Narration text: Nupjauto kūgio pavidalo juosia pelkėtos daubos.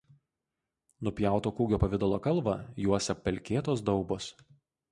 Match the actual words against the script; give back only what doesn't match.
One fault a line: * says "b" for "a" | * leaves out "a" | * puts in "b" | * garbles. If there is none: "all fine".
* puts in "kalvą"